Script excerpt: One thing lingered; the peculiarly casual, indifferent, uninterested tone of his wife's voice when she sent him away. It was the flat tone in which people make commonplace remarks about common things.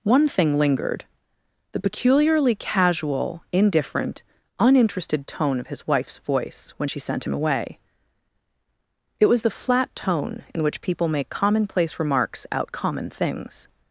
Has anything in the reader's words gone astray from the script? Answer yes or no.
yes